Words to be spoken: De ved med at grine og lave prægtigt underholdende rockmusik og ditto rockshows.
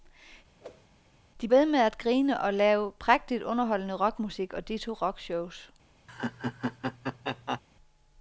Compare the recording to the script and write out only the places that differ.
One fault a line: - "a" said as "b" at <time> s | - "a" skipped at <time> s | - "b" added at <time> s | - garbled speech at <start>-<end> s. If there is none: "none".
none